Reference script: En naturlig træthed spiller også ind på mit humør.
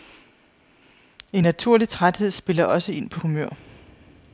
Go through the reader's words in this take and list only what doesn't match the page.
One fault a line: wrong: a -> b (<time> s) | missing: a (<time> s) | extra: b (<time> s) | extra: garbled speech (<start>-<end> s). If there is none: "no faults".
missing: mit (3.2 s)